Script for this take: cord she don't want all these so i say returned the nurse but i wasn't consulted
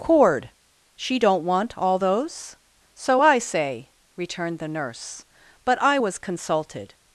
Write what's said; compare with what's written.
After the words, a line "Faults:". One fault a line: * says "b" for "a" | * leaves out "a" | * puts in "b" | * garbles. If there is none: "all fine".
cord she don't want all those so i say returned the nurse but i was consulted
Faults:
* says "those" for "these"
* says "was" for "wasn't"